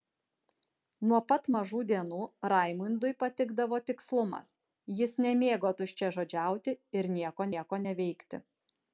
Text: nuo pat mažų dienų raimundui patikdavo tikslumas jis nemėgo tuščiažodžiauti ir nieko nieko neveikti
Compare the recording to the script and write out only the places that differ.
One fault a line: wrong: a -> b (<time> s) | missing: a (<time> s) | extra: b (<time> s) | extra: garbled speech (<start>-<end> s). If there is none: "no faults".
no faults